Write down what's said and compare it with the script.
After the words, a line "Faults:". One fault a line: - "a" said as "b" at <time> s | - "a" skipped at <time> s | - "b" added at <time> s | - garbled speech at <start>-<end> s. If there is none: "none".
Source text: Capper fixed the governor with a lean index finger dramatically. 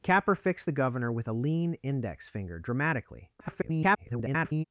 Capper fixed the governor with a lean index finger dramatically. [garbled]
Faults:
- garbled speech at 3.4-4.6 s